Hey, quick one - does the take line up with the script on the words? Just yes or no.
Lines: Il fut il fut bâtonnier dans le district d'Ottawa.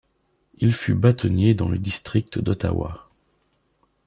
no